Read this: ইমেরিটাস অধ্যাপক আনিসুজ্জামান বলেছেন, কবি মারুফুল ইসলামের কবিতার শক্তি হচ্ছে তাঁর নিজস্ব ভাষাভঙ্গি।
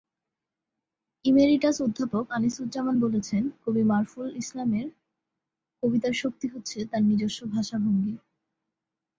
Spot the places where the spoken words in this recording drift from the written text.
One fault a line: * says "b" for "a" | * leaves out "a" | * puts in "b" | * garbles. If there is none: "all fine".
all fine